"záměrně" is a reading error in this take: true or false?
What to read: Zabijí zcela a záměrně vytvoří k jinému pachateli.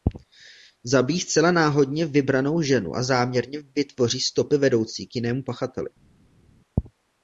false